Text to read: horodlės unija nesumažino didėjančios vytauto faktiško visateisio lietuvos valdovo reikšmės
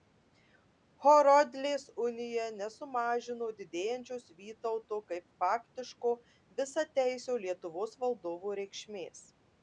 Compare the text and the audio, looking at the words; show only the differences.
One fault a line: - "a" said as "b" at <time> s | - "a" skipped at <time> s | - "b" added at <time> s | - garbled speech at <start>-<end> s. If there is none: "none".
- "kaip" added at 5.1 s